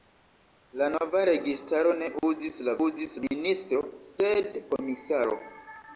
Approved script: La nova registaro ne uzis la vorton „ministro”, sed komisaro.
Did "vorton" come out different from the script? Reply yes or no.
yes